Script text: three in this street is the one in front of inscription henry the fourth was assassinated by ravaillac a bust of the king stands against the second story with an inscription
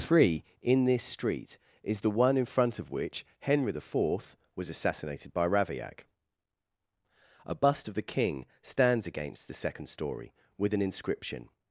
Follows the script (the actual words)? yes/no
no